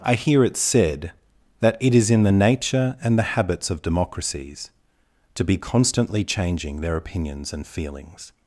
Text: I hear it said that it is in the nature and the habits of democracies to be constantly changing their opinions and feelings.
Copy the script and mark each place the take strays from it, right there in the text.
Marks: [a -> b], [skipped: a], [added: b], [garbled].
I hear it said that it is in the nature and the habits of democracies to be constantly changing their opinions and feelings.